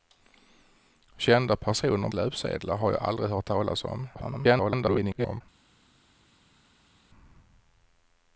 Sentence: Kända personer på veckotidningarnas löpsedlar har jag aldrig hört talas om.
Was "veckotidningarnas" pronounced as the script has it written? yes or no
no